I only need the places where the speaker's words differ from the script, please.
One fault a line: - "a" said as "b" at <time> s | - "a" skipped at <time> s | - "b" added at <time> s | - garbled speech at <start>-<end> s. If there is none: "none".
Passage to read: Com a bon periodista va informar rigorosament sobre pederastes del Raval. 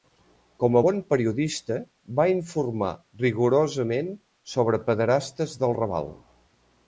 none